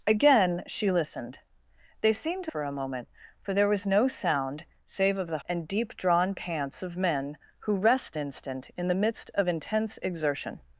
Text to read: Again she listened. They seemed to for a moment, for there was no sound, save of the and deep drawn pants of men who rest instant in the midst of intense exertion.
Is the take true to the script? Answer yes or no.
yes